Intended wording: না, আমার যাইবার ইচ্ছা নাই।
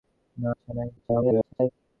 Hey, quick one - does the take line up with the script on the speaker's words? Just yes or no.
no